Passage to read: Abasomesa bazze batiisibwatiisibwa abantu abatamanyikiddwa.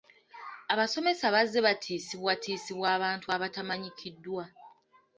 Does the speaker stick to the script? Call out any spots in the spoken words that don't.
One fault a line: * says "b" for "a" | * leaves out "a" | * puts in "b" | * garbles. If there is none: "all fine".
all fine